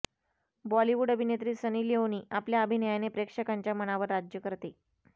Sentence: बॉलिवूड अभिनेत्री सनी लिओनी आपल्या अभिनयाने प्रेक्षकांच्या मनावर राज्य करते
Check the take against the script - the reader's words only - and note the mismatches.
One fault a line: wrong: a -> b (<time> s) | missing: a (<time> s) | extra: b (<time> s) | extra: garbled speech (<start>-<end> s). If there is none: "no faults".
no faults